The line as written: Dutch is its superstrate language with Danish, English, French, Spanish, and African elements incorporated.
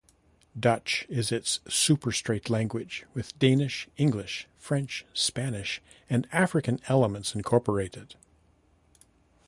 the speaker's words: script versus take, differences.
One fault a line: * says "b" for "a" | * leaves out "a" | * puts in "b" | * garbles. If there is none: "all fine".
all fine